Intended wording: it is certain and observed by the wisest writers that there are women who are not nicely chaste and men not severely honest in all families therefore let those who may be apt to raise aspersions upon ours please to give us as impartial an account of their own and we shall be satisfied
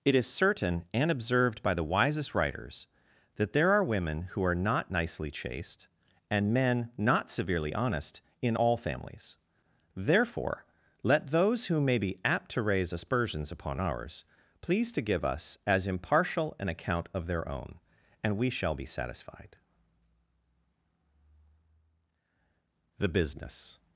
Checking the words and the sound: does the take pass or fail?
fail